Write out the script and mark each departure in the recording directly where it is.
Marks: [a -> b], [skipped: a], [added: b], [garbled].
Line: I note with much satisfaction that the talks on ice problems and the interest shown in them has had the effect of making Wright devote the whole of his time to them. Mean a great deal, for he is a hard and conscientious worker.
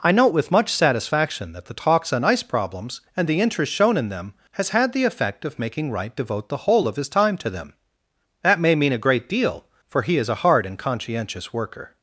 I note with much satisfaction that the talks on ice problems and the interest shown in them has had the effect of making Wright devote the whole of his time to them. [added: That may] Mean a great deal, for he is a hard and conscientious worker.